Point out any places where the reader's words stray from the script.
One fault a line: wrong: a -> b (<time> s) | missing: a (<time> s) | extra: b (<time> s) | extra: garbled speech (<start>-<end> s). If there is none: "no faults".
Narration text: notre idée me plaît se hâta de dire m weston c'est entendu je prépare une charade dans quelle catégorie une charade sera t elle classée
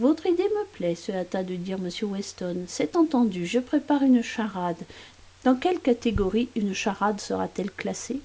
wrong: notre -> votre (0.0 s)